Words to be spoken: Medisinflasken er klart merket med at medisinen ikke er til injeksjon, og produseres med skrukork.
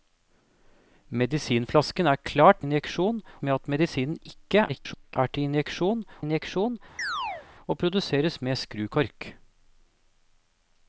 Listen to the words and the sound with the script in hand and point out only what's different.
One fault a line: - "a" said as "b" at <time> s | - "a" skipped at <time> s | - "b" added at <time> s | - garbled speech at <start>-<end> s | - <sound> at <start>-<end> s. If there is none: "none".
- "merket" said as "injeksjon" at 2.6 s
- garbled speech at 4.7-5.2 s
- "injeksjon" added at 6.2 s
- chirp at 7.0-7.5 s